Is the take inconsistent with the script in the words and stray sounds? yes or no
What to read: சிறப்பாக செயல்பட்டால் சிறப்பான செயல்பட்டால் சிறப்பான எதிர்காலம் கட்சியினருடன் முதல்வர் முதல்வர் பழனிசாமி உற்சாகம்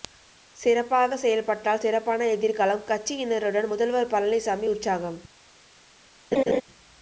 yes